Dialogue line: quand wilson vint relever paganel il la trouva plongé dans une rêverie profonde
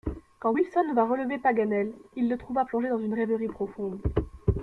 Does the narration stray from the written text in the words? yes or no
yes